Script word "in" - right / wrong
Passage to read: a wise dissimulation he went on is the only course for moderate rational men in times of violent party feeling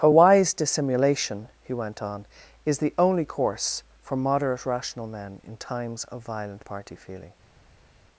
right